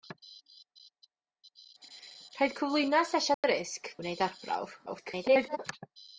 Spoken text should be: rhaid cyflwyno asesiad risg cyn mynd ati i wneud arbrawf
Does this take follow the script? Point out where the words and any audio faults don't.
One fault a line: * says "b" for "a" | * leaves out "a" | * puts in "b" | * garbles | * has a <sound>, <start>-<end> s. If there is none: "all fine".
* has a dropout, 3.3-3.4 s
* leaves out "cyn mynd ati"
* garbles